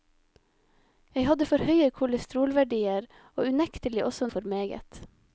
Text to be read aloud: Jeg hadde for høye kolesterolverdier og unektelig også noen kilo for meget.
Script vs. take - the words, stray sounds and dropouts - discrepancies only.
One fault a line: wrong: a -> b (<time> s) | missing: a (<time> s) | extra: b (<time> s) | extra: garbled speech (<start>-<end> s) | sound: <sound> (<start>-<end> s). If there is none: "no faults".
missing: noen kilo (4.3 s)